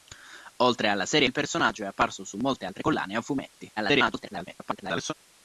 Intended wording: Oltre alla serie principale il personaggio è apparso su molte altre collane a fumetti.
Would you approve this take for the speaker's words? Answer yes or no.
no